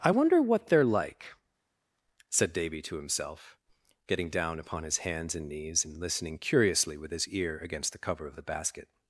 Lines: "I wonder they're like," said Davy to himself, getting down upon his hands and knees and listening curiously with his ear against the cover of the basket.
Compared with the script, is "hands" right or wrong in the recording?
right